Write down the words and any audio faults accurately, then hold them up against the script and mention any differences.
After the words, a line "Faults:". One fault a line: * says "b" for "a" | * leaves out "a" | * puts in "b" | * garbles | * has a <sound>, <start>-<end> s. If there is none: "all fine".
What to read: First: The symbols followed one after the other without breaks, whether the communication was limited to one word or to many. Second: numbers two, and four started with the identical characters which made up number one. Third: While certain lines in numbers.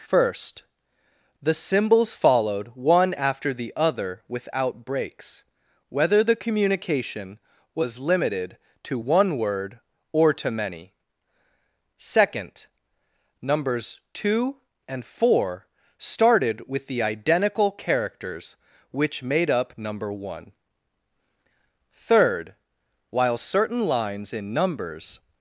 First: The symbols followed one after the other without breaks, whether the communication was limited to one word or to many. Second: numbers two, and four started with the identical characters which made up number one. Third: While certain lines in numbers.
Faults:
all fine